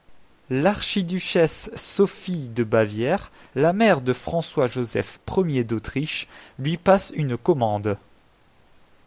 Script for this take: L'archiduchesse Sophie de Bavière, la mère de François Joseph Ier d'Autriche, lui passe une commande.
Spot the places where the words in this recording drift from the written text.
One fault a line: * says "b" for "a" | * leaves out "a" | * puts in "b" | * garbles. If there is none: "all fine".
all fine